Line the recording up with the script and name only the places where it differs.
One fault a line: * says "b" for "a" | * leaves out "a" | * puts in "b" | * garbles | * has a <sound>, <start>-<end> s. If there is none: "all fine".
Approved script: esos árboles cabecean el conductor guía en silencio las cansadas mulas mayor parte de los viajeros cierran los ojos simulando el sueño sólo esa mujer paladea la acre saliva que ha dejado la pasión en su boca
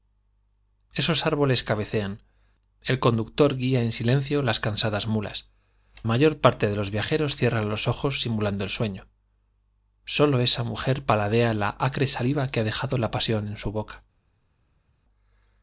all fine